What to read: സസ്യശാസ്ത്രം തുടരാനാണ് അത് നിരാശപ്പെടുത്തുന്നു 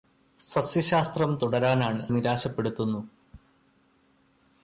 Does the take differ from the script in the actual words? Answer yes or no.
yes